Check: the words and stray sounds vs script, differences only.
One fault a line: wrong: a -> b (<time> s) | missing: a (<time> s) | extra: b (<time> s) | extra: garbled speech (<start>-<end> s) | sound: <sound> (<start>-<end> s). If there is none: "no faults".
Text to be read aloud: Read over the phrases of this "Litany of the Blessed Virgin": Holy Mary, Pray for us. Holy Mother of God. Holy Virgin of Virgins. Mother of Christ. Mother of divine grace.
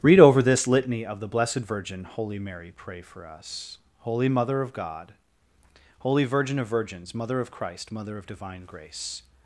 missing: the phrases of (0.4 s)